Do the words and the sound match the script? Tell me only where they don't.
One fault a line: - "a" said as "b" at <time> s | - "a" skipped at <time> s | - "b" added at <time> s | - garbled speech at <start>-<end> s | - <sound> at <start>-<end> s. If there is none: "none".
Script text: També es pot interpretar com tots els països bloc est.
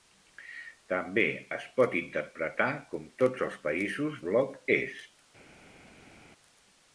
none